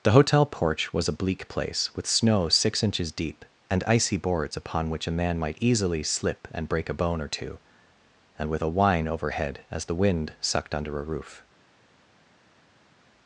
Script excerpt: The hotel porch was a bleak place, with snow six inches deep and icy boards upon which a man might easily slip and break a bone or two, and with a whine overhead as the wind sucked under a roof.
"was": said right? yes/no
yes